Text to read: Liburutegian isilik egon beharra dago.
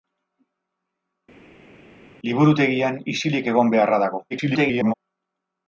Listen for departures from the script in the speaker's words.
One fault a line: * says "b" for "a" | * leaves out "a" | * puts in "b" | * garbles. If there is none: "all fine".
* garbles